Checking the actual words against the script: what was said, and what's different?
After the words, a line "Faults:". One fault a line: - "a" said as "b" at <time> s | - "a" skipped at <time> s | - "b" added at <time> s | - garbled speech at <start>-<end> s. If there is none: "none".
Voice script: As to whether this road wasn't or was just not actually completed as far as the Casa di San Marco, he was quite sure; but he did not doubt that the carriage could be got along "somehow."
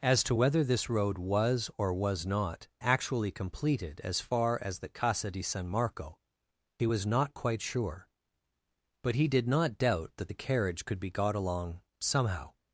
As to whether this road was or was not actually completed as far as the Casa di San Marco, he was not quite sure; but he did not doubt that the carriage could be got along "somehow."
Faults:
- "wasn't" said as "was" at 1.2 s
- "just" skipped at 2.2 s
- "not" added at 7.1 s